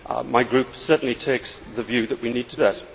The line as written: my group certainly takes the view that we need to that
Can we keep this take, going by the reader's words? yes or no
yes